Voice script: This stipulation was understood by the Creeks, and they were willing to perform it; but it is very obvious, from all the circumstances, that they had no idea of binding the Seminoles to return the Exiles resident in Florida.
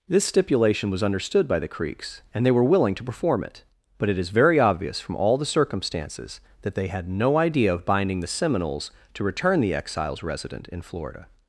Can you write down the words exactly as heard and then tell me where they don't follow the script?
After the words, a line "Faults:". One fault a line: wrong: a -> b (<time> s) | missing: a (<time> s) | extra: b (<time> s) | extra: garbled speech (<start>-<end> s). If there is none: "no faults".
This stipulation was understood by the Creeks, and they were willing to perform it; but it is very obvious, from all the circumstances, that they had no idea of binding the Seminoles to return the Exiles resident in Florida.
Faults:
no faults